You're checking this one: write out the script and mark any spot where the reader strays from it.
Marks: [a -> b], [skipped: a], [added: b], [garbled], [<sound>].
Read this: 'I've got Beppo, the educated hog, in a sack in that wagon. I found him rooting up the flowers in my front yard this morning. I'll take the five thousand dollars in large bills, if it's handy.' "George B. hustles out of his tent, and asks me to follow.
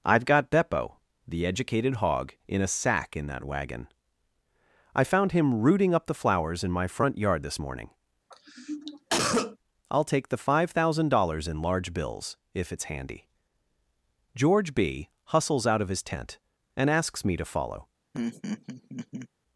'I've got Beppo, the educated hog, in a sack in that wagon. I found him rooting up the flowers in my front yard this morning. [cough] I'll take the five thousand dollars in large bills, if it's handy.' "George B. hustles out of his tent, and asks me to follow. [laugh]